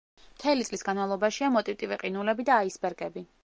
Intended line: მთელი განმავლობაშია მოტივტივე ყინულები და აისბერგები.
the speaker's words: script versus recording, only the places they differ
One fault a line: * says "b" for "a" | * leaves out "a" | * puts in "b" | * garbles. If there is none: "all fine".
* puts in "წლის"